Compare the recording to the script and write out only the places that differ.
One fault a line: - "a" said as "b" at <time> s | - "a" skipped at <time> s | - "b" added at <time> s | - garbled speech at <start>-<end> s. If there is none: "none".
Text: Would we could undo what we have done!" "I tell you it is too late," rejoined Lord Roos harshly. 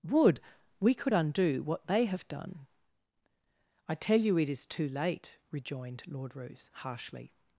- "we" said as "they" at 1.9 s